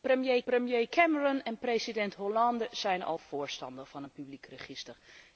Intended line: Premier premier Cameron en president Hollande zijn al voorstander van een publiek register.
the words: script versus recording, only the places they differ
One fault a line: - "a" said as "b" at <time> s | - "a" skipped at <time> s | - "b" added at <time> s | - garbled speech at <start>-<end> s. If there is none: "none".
none